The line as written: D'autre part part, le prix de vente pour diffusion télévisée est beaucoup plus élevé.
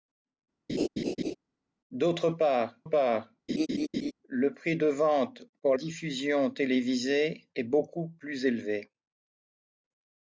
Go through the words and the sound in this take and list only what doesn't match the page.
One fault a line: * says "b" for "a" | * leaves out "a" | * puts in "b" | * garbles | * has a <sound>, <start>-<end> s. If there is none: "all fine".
* has a laugh, 0.7-1.3 s
* has a laugh, 3.5-4.1 s